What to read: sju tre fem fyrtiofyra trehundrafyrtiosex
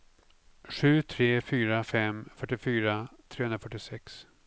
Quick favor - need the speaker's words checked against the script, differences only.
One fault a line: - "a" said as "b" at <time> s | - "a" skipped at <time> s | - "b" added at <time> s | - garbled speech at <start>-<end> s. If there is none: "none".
- "fyra" added at 1.5 s